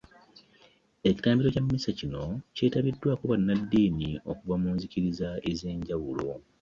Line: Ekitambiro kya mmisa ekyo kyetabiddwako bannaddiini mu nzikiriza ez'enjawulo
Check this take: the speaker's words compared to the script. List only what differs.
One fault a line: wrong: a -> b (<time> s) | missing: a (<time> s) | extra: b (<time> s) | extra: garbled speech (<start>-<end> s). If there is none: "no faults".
wrong: ekyo -> kino (2.0 s)
extra: okuva (4.3 s)